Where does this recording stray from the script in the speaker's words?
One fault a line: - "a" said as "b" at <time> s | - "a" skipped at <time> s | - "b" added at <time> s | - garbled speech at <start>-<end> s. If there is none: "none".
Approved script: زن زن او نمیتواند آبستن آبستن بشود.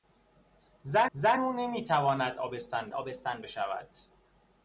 none